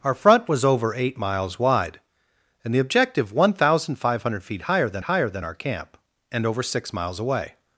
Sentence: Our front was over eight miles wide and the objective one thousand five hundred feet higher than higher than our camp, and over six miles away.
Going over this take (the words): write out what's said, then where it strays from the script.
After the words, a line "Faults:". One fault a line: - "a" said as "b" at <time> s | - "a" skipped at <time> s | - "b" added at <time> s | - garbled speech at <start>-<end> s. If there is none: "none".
Our front was over eight miles wide and the objective one thousand five hundred feet higher than higher than our camp, and over six miles away.
Faults:
none